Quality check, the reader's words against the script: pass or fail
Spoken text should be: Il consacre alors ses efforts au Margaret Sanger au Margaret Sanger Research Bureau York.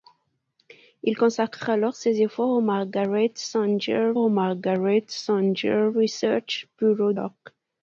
pass